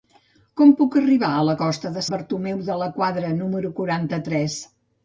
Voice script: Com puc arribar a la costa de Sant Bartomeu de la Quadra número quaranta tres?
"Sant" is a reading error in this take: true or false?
true